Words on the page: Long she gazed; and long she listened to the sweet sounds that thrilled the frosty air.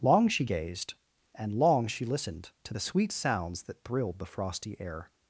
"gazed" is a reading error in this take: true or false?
false